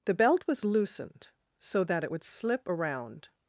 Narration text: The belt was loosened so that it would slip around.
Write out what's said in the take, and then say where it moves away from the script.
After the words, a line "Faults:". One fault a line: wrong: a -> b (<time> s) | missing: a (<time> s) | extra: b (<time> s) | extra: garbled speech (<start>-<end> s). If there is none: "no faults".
The belt was loosened so that it would slip around.
Faults:
no faults